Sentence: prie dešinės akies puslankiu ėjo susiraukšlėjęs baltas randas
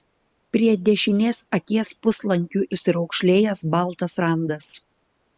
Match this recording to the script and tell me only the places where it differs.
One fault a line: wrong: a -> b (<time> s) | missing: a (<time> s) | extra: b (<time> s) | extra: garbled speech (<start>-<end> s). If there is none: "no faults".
missing: ėjo (2.6 s)